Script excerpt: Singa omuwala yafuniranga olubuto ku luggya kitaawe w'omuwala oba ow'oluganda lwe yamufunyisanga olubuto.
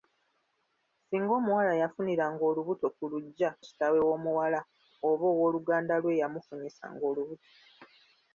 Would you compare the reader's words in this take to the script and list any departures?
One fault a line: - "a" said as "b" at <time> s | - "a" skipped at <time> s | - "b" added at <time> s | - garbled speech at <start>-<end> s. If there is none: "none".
none